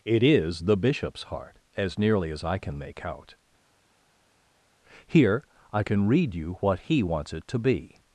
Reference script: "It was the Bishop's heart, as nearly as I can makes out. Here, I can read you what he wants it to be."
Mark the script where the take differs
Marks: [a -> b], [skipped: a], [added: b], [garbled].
"It [was -> is] the Bishop's heart, as nearly as I can [makes -> make] out. Here, I can read you what he wants it to be."